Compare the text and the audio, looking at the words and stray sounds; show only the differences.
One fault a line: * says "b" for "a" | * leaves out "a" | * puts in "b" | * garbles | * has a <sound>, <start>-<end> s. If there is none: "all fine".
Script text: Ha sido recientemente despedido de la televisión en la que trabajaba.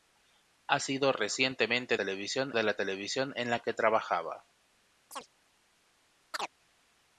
* says "televisión" for "despedido"
* has a chirp, 5.1-5.3 s
* has a chirp, 6.3-6.5 s